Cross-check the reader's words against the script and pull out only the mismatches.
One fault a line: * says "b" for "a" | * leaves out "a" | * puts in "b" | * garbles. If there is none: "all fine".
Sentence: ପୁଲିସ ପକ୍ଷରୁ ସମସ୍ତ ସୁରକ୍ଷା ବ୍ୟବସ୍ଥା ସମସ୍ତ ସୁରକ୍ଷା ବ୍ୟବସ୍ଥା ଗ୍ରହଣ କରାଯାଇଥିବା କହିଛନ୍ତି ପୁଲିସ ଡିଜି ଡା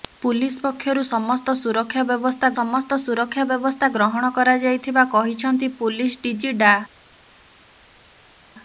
all fine